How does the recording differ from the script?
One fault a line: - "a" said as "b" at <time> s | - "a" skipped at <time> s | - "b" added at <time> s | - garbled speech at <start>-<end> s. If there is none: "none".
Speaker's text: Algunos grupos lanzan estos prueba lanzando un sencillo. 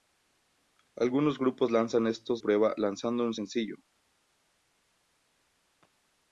none